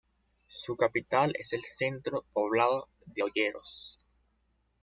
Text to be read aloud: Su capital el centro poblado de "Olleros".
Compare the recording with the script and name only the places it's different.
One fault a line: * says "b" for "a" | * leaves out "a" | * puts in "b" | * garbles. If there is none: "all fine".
* puts in "es"